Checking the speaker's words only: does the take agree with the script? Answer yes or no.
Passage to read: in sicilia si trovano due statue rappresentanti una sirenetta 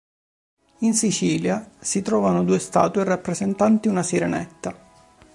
yes